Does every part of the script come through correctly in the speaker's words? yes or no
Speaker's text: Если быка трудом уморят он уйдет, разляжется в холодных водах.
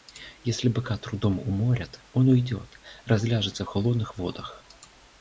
yes